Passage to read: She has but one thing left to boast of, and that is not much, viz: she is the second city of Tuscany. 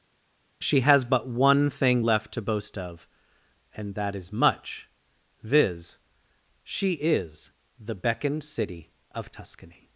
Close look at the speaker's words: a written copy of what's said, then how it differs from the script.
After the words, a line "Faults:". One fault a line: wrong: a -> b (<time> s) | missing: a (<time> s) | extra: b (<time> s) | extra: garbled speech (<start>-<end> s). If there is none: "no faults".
She has but one thing left to boast of, and that is much, viz: she is the beckoned city of Tuscany.
Faults:
missing: not (4.3 s)
wrong: second -> beckoned (8.0 s)